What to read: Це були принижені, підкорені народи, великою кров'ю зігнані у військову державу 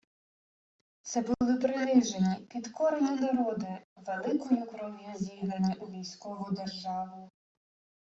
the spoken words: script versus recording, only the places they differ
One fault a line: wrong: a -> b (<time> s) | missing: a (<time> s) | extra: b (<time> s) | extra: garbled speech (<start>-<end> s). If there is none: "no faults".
no faults